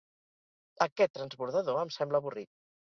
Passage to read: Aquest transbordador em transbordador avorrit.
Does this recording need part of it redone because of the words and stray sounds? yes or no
yes